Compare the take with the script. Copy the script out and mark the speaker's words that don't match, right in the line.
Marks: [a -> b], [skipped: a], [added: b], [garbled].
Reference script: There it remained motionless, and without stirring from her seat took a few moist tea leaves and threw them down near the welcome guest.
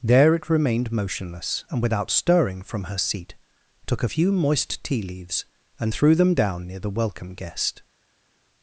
There it remained motionless, and without stirring from her seat took a few moist tea leaves and threw them down near the welcome guest.